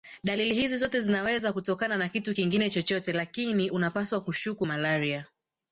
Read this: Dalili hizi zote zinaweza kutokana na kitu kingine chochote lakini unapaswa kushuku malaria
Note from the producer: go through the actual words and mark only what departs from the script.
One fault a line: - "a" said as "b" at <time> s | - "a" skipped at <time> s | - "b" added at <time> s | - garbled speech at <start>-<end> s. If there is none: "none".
none